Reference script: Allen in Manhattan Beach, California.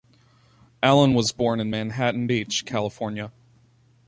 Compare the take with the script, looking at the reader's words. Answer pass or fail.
fail